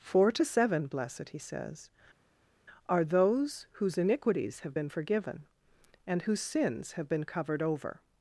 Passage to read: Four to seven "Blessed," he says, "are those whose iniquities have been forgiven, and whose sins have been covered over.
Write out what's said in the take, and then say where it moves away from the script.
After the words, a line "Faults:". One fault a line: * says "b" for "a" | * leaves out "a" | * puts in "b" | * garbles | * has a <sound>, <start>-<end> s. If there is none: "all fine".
Four to seven "Blessed," he says, "are those whose iniquities have been forgiven, and whose sins have been covered over.
Faults:
all fine